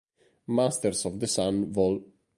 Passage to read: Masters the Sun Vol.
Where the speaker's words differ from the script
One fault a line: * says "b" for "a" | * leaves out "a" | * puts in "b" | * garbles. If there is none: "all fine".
* puts in "of"